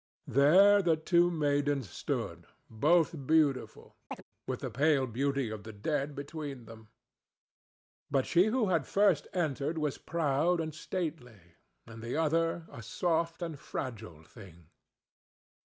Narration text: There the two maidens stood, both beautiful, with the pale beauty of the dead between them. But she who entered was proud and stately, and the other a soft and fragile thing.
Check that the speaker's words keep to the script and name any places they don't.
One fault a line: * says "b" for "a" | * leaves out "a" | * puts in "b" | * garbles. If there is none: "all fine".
* puts in "had first"